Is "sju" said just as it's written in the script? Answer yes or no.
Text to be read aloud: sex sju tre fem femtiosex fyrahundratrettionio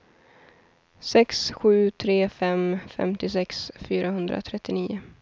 yes